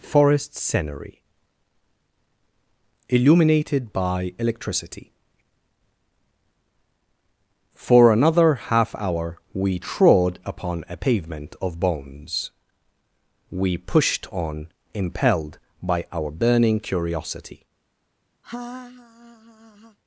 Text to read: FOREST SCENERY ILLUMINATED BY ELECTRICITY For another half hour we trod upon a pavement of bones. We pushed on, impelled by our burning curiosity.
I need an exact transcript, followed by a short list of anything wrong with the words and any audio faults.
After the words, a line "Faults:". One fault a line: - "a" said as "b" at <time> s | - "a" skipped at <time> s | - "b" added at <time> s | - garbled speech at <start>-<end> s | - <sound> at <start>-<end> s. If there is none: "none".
FOREST SCENERY ILLUMINATED BY ELECTRICITY For another half hour we trod upon a pavement of bones. We pushed on, impelled by our burning curiosity.
Faults:
- laugh at 18.4-20.0 s